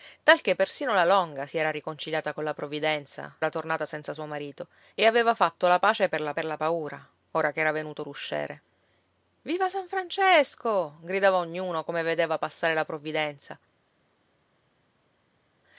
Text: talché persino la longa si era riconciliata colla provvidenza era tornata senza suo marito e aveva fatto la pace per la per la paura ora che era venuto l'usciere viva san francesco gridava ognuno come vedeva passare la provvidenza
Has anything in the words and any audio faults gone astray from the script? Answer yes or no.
no